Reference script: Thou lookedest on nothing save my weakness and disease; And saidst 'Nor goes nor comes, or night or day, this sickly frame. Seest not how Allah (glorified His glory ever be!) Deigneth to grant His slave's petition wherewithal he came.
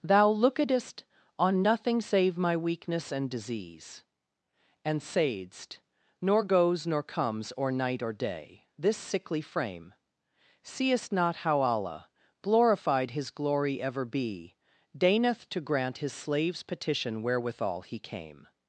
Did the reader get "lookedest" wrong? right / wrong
right